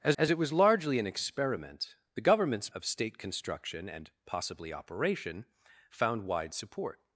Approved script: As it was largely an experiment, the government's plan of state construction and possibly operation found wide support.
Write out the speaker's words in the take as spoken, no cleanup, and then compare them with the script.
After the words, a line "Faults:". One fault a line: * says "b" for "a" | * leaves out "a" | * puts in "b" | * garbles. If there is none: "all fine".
As as it was largely an experiment, the government's of state construction and possibly operation found wide support.
Faults:
* puts in "as"
* leaves out "plan"